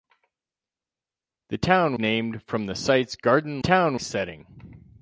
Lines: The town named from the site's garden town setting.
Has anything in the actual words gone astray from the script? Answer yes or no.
no